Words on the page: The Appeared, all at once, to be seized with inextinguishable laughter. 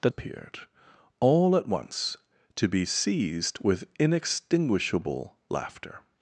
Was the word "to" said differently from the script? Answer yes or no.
no